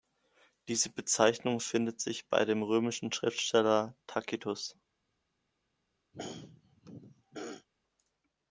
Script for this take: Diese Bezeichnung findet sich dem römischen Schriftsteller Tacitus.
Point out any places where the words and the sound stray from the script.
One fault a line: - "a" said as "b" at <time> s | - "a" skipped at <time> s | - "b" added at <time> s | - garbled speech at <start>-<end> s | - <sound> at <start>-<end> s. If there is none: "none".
- "bei" added at 2.3 s
- throat clearing at 6.1-7.7 s